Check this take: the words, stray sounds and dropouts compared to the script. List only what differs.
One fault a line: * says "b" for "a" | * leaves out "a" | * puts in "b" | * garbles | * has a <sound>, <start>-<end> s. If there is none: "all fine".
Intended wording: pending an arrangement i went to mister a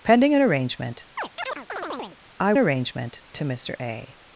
* has a chirp, 1.2-2.2 s
* says "arrangement" for "went"